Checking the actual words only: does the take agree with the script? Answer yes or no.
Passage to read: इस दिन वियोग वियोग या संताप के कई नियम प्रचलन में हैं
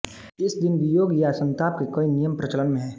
no